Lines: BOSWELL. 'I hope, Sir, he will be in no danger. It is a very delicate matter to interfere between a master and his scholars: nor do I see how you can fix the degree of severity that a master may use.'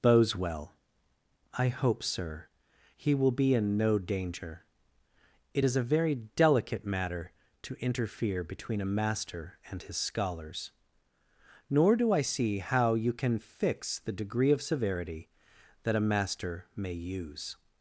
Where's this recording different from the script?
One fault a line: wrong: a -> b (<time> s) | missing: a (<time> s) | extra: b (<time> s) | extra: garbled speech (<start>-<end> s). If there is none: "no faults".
no faults